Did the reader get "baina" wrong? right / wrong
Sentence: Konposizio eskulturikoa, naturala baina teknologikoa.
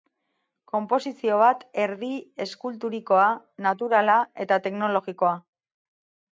wrong